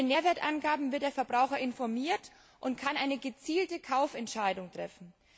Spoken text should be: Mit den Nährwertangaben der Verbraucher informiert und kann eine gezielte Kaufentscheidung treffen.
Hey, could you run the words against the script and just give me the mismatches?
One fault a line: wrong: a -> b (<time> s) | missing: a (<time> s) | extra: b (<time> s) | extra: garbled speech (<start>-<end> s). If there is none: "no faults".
extra: wird (0.9 s)